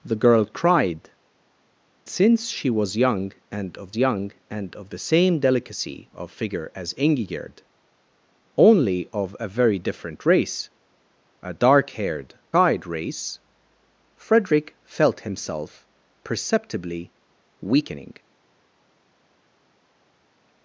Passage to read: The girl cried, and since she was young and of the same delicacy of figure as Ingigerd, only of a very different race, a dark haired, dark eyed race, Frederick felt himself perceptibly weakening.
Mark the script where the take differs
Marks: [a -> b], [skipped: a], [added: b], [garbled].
The girl cried, [skipped: and] since she was young and of [added: young and of] the same delicacy of figure as Ingigerd, only of a very different race, a dark haired, [skipped: dark] eyed race, Frederick felt himself perceptibly weakening.